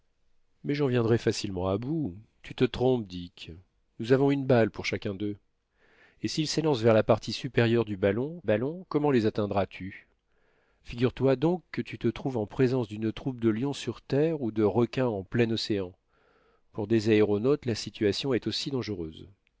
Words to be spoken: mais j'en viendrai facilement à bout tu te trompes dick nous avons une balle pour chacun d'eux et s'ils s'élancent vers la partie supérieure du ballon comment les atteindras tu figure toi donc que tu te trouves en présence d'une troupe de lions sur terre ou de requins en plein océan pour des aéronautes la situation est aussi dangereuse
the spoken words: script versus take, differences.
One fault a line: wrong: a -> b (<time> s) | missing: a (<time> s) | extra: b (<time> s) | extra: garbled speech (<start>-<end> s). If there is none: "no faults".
extra: ballon (8.4 s)